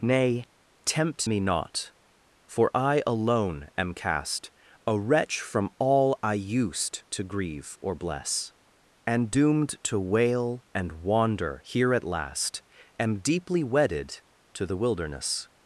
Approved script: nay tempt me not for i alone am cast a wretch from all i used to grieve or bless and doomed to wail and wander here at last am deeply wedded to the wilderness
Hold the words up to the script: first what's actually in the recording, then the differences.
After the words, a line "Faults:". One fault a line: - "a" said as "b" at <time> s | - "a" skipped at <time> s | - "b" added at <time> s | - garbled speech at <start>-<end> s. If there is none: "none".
nay tempt me not for i alone am cast a wretch from all i used to grieve or bless and doomed to wail and wander here at last am deeply wedded to the wilderness
Faults:
none